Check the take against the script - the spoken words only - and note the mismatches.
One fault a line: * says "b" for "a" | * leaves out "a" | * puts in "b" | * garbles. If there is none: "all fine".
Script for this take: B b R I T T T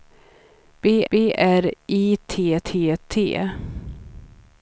all fine